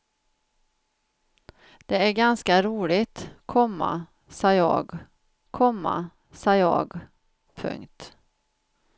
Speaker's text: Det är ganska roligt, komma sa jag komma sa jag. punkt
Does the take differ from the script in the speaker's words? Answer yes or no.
no